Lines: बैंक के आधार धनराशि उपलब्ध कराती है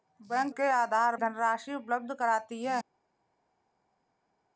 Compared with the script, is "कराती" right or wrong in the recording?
right